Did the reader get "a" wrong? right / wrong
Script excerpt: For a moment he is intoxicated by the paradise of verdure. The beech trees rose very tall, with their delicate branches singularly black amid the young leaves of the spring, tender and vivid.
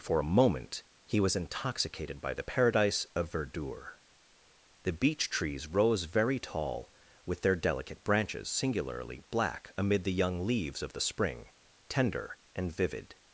right